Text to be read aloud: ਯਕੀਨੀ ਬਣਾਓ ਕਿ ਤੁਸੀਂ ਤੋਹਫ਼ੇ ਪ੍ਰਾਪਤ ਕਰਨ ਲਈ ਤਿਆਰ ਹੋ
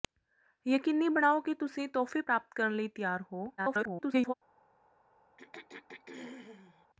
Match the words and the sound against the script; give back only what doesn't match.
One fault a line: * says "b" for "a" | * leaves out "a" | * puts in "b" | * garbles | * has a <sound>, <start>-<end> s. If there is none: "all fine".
* garbles
* has a throat clearing, 5.4-6.9 s